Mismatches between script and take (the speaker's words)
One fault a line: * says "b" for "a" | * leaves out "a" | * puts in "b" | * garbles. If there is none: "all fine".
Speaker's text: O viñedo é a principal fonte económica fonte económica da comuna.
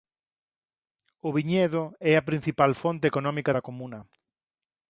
* leaves out "fonte económica"